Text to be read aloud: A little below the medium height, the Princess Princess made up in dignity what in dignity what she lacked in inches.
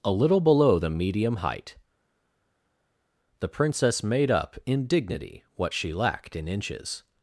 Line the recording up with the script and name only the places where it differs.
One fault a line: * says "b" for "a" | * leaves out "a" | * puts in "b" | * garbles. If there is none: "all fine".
* leaves out "Princess"
* leaves out "in dignity what"